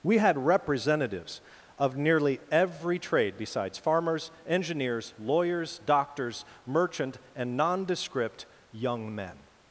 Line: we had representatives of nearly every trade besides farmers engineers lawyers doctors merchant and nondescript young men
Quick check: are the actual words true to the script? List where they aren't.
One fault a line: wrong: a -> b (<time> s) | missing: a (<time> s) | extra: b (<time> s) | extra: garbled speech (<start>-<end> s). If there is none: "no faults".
no faults